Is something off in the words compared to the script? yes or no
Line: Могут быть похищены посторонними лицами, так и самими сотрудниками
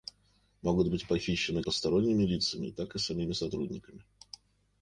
no